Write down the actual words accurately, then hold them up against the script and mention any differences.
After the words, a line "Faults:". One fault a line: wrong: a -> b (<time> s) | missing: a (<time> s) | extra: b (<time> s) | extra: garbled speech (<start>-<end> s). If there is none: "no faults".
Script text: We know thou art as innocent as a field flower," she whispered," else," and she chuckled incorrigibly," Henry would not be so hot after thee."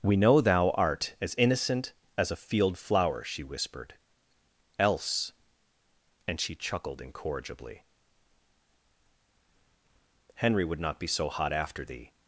We know thou art as innocent as a field flower," she whispered," else," and she chuckled incorrigibly," Henry would not be so hot after thee."
Faults:
no faults